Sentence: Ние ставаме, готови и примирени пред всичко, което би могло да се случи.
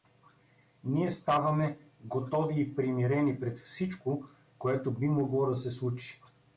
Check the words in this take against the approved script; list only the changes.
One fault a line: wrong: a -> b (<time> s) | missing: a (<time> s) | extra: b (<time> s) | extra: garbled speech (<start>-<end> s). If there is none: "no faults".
no faults